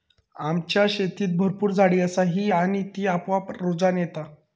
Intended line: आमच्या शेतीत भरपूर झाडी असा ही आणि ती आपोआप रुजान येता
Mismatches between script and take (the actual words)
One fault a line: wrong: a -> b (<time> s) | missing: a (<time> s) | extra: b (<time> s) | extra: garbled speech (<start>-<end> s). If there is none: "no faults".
no faults